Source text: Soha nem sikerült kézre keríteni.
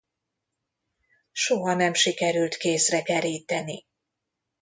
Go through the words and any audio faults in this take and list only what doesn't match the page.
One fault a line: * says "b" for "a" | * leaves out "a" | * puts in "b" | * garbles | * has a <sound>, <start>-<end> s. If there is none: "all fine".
all fine